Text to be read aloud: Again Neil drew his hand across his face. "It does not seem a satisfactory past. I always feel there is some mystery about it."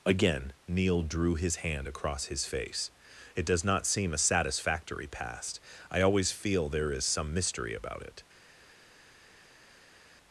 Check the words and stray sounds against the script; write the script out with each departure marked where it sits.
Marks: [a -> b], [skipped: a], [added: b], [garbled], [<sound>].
Again Neil drew his hand across his face. "It does not seem a satisfactory past. I always feel there is some mystery about it."